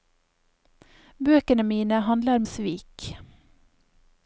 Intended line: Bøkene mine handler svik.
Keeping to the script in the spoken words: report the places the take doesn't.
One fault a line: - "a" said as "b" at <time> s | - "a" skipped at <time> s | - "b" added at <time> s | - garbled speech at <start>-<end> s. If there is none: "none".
none